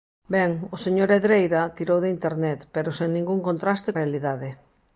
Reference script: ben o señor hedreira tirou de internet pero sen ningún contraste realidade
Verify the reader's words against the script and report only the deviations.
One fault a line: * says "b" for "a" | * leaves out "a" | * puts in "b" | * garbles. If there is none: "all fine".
all fine